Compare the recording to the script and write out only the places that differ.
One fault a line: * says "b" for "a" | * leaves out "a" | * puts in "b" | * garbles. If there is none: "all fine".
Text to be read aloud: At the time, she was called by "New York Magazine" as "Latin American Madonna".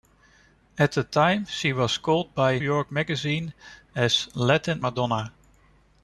* leaves out "New"
* leaves out "American"